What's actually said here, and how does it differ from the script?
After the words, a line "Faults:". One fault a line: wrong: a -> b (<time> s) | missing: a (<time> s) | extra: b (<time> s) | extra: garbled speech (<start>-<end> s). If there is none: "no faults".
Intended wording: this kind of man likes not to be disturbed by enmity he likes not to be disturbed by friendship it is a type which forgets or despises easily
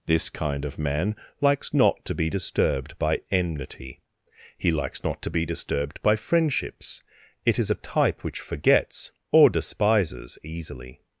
this kind of man likes not to be disturbed by enmity he likes not to be disturbed by friendships it is a type which forgets or despises easily
Faults:
wrong: friendship -> friendships (6.2 s)